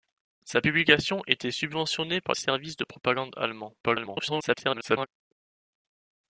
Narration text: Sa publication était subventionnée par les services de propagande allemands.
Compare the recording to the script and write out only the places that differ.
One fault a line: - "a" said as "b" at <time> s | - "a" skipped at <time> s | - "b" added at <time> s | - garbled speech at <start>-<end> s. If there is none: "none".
- "les" skipped at 2.3 s
- garbled speech at 3.8-5.1 s